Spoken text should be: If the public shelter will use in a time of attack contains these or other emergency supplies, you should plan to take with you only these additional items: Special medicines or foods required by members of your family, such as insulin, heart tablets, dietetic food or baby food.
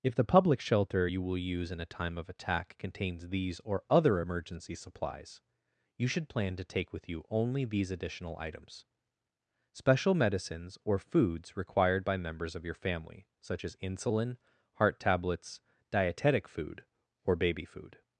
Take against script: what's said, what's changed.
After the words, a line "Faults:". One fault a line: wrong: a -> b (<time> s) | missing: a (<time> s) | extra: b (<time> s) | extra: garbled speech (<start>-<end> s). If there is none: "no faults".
If the public shelter you will use in a time of attack contains these or other emergency supplies, you should plan to take with you only these additional items: Special medicines or foods required by members of your family, such as insulin, heart tablets, dietetic food or baby food.
Faults:
extra: you (1.0 s)